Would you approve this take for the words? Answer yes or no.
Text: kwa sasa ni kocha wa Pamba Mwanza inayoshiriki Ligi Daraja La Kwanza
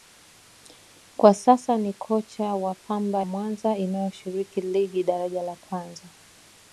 yes